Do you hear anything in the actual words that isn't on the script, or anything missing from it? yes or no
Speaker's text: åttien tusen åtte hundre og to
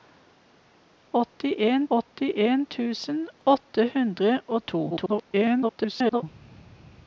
yes